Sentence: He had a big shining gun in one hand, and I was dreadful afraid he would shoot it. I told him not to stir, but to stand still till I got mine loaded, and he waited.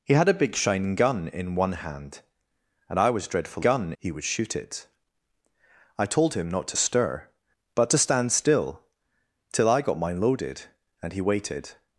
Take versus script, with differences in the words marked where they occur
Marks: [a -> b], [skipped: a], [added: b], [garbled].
He had a big shining gun in one hand, and I was dreadful [afraid -> gun] he would shoot it. I told him not to stir, but to stand still till I got mine loaded, and he waited.